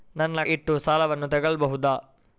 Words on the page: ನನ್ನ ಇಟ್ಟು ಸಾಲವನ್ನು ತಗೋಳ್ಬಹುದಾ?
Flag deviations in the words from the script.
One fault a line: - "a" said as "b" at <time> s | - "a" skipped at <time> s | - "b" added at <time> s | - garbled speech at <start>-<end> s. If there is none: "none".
none